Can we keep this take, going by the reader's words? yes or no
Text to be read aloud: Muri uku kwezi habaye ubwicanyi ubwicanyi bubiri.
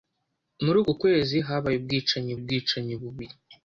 yes